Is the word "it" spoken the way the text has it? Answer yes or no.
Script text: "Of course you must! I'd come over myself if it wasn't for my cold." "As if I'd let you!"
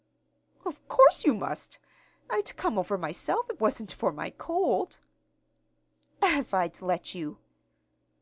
no